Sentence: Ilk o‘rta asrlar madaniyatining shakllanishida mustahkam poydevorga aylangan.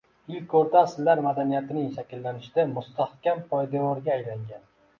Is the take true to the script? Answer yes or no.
yes